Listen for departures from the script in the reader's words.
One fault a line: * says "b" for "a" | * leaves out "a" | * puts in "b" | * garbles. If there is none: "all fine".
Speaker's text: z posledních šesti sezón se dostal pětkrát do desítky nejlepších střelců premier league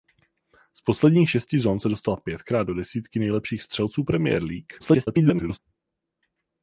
* garbles